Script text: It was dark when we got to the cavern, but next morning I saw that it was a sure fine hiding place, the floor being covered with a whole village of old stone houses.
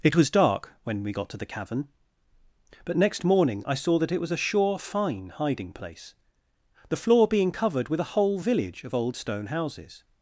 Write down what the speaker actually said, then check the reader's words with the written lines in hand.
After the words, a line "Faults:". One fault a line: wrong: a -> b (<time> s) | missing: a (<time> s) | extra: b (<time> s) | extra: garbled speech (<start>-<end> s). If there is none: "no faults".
It was dark when we got to the cavern, but next morning I saw that it was a sure fine hiding place, the floor being covered with a whole village of old stone houses.
Faults:
no faults